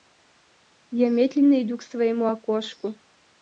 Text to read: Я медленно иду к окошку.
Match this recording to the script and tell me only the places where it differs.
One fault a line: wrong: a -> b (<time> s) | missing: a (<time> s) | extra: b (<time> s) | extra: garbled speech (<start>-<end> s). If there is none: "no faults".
extra: своему (1.8 s)